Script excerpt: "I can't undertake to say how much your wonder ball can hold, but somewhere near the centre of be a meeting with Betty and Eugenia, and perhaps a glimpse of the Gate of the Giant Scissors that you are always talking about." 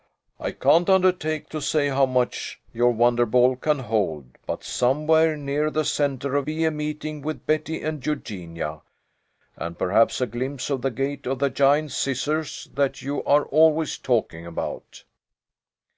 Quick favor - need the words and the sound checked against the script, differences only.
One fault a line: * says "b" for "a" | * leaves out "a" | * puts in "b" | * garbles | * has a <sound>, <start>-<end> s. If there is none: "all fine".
all fine